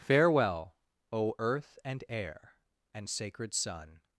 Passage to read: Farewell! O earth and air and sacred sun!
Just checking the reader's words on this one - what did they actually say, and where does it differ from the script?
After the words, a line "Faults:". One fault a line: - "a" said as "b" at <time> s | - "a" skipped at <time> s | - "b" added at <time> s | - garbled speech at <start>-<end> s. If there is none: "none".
Farewell! O earth and air and sacred sun!
Faults:
none